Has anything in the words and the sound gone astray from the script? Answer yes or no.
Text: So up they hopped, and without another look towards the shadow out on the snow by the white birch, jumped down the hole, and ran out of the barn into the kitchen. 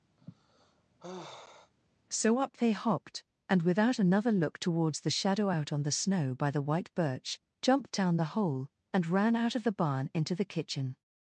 yes